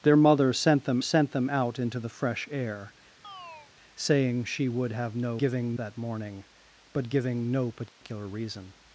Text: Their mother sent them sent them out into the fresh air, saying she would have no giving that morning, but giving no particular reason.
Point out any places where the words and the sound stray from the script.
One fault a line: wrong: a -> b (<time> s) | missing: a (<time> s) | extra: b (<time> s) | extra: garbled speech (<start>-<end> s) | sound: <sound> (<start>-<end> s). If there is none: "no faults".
sound: chirp (3.2-3.7 s)
sound: dropout (7.9-8.0 s)